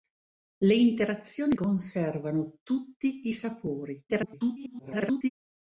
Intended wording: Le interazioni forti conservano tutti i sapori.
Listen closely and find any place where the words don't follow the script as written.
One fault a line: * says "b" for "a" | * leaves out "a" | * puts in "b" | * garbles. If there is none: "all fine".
* leaves out "forti"
* garbles